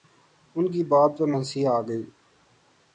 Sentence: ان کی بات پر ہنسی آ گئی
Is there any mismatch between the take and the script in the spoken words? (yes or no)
no